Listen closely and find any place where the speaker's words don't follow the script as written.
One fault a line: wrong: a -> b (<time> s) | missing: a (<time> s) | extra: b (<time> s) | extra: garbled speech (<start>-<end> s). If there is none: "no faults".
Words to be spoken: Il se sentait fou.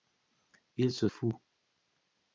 missing: sentait (1.1 s)